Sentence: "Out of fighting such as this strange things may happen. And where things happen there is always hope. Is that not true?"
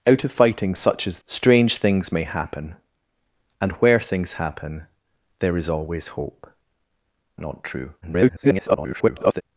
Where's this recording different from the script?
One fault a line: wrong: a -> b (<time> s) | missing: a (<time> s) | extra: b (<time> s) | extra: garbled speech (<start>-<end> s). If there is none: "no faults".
missing: this (1.2 s)
missing: Is that (6.5 s)
extra: garbled speech (8.0-9.4 s)